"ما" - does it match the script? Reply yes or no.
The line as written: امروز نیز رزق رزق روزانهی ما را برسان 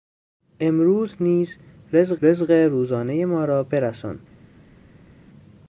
yes